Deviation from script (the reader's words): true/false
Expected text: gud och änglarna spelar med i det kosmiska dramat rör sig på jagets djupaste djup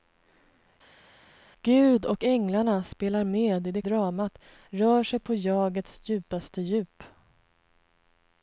true